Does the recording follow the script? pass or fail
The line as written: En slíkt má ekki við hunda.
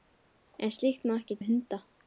pass